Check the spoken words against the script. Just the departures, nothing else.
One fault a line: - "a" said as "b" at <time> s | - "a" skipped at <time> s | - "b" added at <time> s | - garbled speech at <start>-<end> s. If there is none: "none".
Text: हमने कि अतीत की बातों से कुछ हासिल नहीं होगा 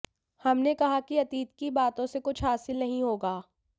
- "कहा" added at 0.7 s